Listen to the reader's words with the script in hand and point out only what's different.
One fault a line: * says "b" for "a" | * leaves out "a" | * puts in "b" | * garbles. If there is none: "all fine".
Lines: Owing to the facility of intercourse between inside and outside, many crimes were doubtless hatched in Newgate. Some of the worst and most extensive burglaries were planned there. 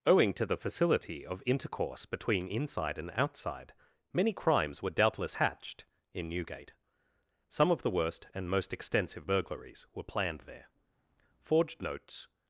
* puts in "Forged notes"